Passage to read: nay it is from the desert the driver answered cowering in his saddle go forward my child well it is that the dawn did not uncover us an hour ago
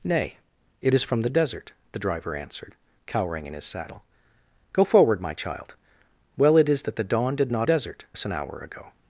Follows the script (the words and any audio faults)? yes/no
no